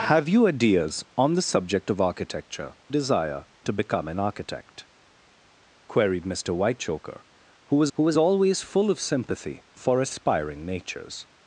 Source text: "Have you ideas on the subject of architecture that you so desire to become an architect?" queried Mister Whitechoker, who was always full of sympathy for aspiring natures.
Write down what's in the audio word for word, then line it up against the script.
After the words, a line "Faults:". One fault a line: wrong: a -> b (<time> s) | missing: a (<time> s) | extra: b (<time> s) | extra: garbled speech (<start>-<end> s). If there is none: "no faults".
"Have you ideas on the subject of architecture desire to become an architect?" queried Mister Whitechoker, who was who was always full of sympathy for aspiring natures.
Faults:
missing: that you so (2.7 s)
extra: who was (7.9 s)